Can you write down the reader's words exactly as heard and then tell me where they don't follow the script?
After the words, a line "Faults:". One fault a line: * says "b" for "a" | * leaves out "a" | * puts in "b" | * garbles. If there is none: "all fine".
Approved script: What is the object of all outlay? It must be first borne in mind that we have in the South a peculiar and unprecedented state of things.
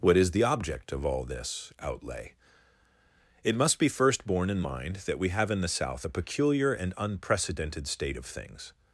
What is the object of all this outlay? It must be first borne in mind that we have in the South a peculiar and unprecedented state of things.
Faults:
* puts in "this"